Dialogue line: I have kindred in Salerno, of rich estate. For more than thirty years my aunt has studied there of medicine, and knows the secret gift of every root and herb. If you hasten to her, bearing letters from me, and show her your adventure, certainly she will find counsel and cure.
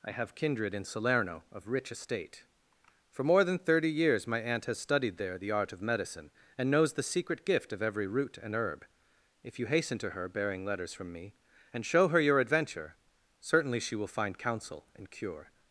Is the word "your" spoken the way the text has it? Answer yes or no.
yes